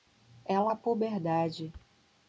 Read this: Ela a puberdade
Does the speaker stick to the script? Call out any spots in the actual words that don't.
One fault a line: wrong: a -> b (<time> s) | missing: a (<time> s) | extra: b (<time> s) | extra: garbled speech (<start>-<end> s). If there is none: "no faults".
no faults